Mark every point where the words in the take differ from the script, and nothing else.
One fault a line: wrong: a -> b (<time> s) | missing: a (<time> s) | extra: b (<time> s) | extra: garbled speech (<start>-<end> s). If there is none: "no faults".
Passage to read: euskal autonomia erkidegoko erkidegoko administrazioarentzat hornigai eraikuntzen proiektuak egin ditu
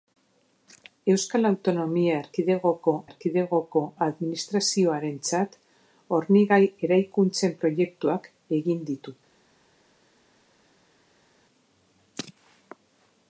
no faults